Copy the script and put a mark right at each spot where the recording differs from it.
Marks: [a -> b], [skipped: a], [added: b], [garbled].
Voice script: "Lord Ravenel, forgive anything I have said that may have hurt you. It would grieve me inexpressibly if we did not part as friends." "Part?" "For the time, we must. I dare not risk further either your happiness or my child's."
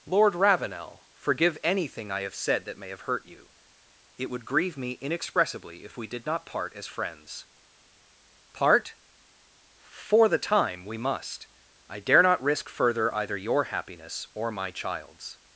"Lord Ravenel, forgive anything I have said that may have hurt you. It would grieve me inexpressibly if we did not part as friends." "Part?" "For the time, we must. I dare not risk further either your happiness or my child's."